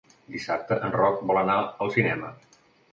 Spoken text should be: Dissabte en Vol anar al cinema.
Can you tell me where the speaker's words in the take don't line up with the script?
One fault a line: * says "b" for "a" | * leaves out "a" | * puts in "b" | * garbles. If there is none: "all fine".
* puts in "Roc"